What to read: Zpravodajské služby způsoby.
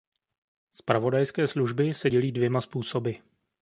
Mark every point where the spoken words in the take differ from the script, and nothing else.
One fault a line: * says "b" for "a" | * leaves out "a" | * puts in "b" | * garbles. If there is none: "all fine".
* puts in "se dělí dvěma"